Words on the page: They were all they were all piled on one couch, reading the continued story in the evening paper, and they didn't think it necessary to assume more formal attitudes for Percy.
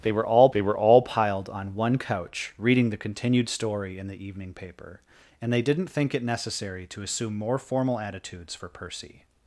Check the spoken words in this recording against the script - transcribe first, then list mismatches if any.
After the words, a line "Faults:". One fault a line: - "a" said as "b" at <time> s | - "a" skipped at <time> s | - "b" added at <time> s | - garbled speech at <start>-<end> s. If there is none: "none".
They were all they were all piled on one couch, reading the continued story in the evening paper, and they didn't think it necessary to assume more formal attitudes for Percy.
Faults:
none